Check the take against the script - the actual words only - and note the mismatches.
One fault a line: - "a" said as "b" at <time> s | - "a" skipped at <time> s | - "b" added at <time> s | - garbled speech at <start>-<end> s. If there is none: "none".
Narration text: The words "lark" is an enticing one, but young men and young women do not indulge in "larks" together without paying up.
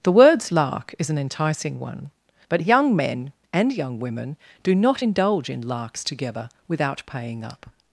none